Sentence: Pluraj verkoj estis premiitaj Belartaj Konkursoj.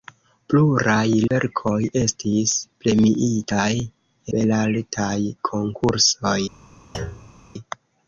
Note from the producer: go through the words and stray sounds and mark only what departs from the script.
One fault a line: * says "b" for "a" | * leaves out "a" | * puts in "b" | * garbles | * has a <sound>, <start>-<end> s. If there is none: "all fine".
* has a thud, 6.9-7.4 s